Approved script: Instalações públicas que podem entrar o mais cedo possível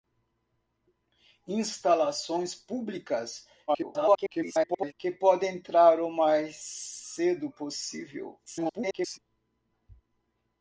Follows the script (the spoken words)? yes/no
no